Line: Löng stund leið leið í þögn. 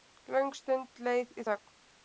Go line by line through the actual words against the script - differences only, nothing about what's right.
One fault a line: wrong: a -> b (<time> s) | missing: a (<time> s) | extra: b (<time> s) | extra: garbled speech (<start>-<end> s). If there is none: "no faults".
missing: leið (1.4 s)